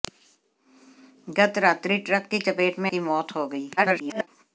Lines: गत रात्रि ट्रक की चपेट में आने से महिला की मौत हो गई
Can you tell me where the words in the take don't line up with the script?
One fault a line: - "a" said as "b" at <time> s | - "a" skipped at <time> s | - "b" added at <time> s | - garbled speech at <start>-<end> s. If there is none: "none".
- "आने से महिला" skipped at 2.9 s
- garbled speech at 3.8-4.3 s